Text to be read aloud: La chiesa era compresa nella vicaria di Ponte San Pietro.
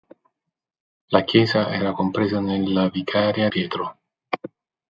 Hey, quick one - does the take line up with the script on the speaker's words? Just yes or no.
no